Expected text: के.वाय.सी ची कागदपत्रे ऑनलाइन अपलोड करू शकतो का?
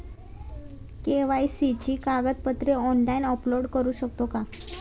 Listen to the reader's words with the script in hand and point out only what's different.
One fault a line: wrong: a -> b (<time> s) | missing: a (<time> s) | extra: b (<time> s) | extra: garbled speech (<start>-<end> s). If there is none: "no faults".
no faults